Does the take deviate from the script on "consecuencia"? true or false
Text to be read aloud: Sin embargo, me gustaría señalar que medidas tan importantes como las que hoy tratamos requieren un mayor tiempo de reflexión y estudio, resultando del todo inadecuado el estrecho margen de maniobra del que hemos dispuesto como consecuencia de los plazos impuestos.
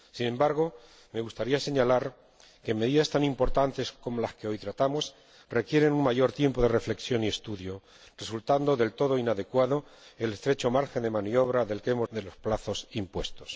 true